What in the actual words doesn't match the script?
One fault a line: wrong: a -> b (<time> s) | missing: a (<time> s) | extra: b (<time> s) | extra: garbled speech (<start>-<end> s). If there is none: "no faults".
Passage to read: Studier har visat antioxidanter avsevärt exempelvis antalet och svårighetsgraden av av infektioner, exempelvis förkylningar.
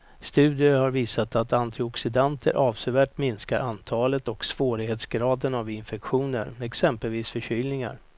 extra: att (1.4 s)
wrong: exempelvis -> minskar (3.2 s)
missing: av (5.7 s)